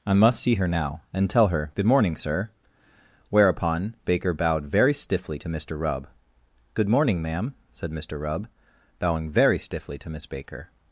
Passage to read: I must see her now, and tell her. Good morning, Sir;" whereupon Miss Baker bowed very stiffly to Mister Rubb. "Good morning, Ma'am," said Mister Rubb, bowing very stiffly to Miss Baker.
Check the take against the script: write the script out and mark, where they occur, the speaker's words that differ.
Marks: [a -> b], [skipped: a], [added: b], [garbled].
I must see her now, and tell her. Good morning, Sir;" whereupon [skipped: Miss] Baker bowed very stiffly to Mister Rubb. "Good morning, Ma'am," said Mister Rubb, bowing very stiffly to Miss Baker.